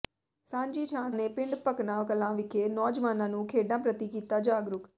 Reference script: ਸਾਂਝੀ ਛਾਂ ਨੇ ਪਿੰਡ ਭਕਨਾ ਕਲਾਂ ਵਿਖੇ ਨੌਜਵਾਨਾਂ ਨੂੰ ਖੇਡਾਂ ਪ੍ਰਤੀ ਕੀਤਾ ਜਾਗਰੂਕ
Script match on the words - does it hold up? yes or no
yes